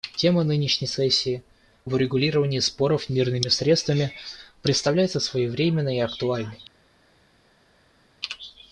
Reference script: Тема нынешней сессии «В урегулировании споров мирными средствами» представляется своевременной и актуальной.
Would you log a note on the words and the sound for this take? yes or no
no